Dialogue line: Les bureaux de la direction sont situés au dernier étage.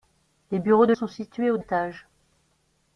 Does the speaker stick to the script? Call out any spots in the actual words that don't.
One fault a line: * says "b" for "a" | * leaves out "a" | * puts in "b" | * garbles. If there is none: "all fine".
* leaves out "la direction"
* leaves out "dernier"